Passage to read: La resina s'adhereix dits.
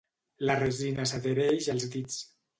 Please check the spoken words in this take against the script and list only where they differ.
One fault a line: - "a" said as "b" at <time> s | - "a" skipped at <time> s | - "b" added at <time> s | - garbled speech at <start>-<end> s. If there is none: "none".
- "als" added at 1.8 s